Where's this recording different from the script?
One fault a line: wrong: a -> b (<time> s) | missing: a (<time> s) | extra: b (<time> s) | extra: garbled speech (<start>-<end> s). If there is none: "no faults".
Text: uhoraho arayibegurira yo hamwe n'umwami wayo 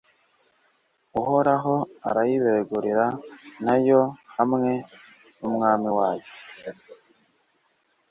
extra: na (3.6 s)